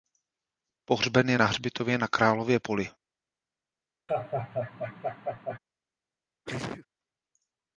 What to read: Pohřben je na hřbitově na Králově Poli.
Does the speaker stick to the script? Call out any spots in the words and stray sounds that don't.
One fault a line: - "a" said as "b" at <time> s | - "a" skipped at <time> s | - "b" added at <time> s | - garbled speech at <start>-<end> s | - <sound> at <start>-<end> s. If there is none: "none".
- laugh at 4.1-5.6 s
- sneeze at 6.5-6.9 s